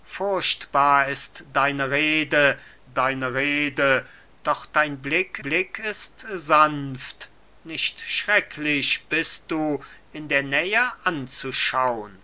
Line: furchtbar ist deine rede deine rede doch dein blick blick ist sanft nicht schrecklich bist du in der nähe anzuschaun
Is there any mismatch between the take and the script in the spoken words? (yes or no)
no